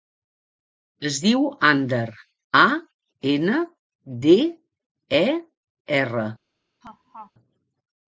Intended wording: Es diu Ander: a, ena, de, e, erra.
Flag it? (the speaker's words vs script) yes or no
no